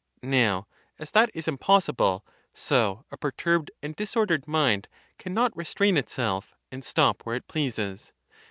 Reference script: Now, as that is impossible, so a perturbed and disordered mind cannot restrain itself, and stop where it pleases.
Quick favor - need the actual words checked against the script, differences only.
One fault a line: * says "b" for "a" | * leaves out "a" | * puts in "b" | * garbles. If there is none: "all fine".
all fine